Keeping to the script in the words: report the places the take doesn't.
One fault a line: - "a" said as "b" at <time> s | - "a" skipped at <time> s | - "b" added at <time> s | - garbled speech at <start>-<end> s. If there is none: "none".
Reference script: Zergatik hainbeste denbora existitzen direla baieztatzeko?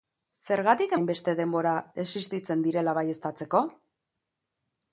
none